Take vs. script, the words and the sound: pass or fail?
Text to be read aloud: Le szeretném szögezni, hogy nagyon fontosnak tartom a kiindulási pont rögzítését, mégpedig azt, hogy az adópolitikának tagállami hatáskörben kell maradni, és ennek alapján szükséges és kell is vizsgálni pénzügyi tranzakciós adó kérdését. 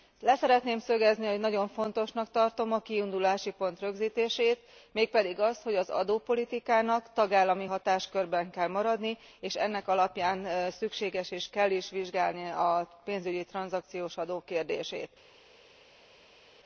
fail